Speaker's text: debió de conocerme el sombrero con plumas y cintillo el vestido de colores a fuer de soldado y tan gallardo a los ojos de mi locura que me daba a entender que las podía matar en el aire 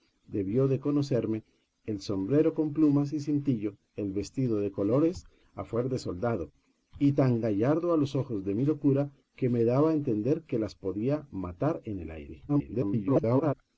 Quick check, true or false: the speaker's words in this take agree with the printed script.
false